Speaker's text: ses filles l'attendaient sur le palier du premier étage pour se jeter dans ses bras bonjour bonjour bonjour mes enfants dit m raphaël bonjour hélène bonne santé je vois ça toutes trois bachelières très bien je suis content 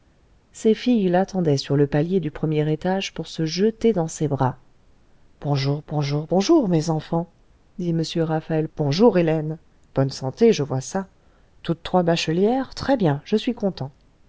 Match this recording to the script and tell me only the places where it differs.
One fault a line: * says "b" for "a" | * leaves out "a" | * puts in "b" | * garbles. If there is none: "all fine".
all fine